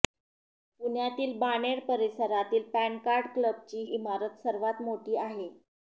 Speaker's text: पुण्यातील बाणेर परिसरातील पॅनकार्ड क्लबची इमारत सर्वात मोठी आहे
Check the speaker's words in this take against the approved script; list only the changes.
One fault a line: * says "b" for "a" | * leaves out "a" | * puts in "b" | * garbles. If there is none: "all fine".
all fine